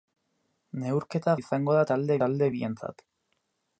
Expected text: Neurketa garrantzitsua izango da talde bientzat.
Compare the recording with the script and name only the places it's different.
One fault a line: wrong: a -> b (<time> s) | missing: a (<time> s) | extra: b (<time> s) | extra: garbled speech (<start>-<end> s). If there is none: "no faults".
missing: garrantzitsua (1.4 s)
extra: talde (2.2 s)